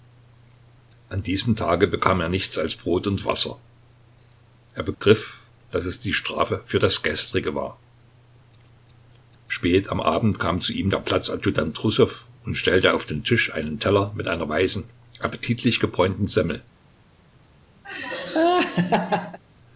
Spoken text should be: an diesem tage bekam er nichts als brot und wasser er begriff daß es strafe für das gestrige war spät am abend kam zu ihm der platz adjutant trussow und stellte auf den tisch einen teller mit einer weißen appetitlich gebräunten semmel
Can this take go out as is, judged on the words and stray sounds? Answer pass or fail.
fail